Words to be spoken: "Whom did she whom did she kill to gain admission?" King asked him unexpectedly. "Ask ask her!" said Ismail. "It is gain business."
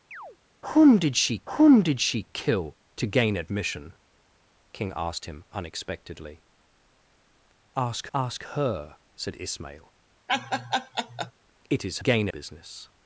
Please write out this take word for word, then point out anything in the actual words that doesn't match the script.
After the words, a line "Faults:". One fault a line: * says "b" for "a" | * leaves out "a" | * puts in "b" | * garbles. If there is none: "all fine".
"Whom did she whom did she kill to gain admission?" King asked him unexpectedly. "Ask ask her!" said Ismail. "It is gain business."
Faults:
all fine